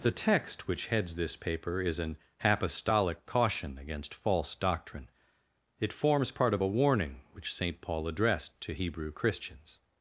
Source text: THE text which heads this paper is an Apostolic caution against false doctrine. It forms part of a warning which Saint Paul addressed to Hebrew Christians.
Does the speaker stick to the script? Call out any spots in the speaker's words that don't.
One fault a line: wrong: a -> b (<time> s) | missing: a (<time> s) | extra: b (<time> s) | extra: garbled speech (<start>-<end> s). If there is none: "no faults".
no faults